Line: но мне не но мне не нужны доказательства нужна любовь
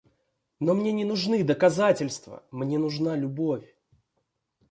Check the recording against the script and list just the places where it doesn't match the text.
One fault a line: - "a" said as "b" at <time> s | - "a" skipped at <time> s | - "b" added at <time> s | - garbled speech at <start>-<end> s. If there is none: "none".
- "но мне не" skipped at 1.1 s
- "мне" added at 2.5 s